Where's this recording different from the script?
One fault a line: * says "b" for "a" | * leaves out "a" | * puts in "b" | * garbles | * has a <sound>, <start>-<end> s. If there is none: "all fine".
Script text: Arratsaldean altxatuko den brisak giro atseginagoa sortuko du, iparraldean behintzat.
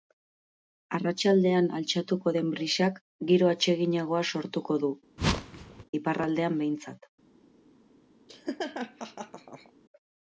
* has a whoosh, 5.2-5.8 s
* has a laugh, 8.3-9.7 s